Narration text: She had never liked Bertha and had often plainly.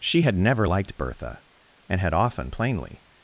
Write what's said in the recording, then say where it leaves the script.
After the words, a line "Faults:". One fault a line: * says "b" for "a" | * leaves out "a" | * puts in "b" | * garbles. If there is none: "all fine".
She had never liked Bertha and had often plainly.
Faults:
all fine